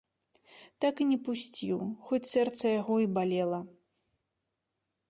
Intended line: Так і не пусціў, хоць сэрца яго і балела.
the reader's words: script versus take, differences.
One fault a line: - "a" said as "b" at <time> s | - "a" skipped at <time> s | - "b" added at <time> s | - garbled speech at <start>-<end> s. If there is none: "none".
none